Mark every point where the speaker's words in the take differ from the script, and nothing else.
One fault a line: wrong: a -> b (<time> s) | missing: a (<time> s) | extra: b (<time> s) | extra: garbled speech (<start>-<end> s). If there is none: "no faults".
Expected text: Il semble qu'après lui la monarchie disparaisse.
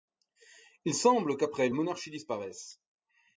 missing: lui la (1.7 s)